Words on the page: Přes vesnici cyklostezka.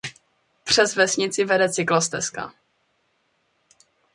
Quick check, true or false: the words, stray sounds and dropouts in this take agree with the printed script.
false